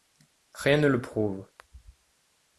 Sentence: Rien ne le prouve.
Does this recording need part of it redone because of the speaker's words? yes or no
no